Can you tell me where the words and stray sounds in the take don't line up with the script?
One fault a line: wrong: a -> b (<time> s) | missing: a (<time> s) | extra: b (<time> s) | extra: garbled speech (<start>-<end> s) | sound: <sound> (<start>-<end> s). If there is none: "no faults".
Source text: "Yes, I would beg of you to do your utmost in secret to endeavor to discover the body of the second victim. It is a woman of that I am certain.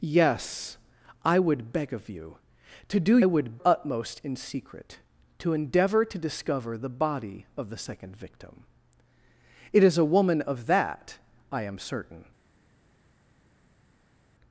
wrong: your -> would (3.2 s)